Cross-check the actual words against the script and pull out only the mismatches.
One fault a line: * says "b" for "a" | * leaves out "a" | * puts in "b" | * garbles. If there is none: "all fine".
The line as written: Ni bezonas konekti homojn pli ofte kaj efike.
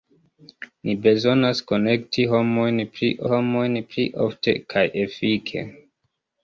* puts in "homojn pli"